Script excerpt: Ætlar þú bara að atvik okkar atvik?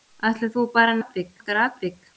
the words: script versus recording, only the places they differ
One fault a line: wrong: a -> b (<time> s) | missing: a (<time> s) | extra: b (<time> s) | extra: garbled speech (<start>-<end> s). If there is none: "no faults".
no faults